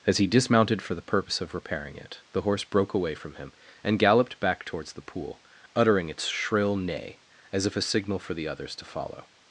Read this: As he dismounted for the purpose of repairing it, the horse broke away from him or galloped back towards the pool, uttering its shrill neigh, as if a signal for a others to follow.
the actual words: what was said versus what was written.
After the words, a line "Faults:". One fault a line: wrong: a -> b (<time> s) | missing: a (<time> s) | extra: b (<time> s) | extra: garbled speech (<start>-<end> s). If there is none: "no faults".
As he dismounted for the purpose of repairing it, the horse broke away from him and galloped back towards the pool, uttering its shrill neigh, as if a signal for the others to follow.
Faults:
wrong: or -> and (3.8 s)
wrong: a -> the (8.3 s)